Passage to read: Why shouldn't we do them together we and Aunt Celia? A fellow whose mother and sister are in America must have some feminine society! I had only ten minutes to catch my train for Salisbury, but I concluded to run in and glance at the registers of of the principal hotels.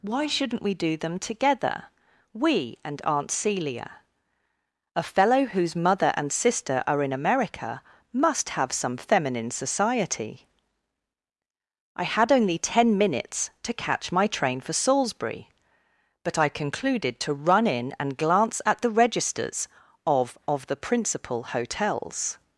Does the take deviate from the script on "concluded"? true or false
false